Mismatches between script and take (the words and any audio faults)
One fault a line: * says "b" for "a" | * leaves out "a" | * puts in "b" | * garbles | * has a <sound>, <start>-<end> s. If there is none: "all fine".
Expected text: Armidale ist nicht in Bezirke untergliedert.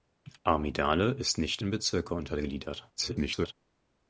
* garbles